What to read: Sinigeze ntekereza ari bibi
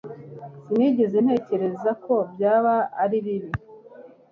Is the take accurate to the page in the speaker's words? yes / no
no